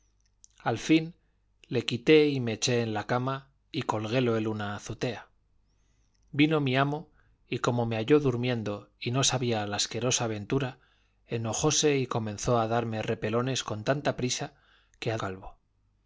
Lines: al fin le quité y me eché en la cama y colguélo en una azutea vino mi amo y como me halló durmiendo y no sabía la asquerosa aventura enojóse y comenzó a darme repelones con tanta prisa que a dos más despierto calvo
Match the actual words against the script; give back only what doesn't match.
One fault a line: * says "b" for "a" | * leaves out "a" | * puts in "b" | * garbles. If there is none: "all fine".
* leaves out "dos más despierto"